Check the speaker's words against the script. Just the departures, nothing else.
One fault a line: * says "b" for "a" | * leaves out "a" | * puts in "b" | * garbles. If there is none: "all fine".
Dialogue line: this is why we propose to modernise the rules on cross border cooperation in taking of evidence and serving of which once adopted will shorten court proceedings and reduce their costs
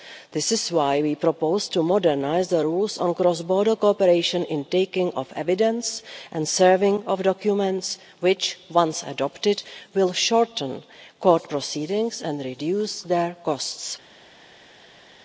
* puts in "documents"